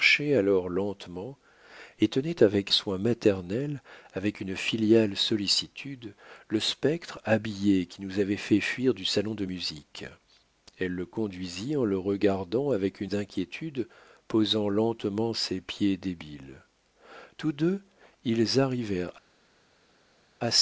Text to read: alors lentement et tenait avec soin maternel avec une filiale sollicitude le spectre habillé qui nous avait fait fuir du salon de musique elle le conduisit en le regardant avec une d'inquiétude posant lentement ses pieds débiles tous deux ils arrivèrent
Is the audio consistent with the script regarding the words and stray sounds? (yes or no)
yes